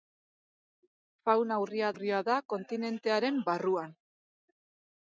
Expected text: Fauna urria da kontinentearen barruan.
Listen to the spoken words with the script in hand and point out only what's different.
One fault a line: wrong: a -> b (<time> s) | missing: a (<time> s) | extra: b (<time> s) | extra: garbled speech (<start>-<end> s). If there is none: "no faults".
extra: urria (1.9 s)